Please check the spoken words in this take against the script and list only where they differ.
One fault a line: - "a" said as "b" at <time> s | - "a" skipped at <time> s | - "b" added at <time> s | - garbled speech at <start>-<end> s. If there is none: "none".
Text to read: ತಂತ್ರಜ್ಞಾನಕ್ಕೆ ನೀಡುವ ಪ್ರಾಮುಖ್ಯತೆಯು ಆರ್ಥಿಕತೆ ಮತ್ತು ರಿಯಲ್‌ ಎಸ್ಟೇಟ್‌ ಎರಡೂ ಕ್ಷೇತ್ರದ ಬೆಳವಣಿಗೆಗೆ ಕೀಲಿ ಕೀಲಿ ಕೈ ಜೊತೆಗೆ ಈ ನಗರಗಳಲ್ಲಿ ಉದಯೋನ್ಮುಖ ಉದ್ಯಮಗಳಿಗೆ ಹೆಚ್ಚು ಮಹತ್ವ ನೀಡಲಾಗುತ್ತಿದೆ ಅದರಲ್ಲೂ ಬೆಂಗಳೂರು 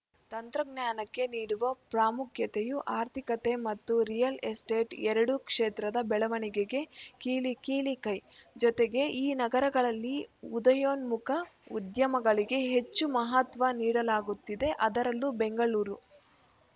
none